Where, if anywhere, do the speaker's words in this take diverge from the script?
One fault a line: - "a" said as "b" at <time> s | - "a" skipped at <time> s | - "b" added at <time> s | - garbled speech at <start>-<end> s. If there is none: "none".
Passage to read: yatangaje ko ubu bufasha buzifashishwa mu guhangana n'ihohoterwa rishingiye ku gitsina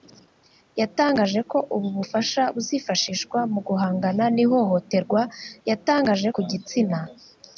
- "rishingiye" said as "yatangaje" at 5.7 s